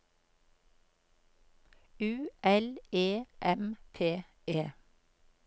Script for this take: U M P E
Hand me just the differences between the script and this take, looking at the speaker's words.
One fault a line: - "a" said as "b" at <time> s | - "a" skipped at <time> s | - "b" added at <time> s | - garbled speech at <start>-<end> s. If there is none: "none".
- "L E" added at 2.4 s